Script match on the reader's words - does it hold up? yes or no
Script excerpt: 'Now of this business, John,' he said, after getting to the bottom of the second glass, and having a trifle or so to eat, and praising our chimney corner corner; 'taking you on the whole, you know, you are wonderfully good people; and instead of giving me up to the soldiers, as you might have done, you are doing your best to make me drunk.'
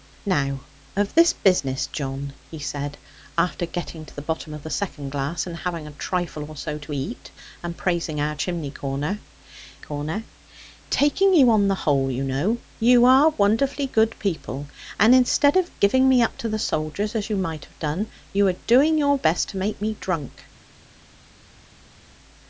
yes